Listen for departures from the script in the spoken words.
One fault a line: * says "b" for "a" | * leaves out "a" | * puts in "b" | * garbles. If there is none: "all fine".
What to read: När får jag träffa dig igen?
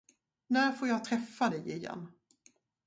all fine